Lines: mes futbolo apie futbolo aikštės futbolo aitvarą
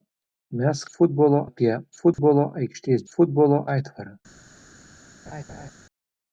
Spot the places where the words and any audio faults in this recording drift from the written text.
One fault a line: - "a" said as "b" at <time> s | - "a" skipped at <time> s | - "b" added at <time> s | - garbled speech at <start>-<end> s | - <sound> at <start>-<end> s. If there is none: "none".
- dropout at 2.1-2.2 s
- laugh at 5.3-5.7 s